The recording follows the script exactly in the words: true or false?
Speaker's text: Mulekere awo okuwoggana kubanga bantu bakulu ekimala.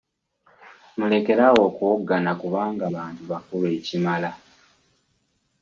true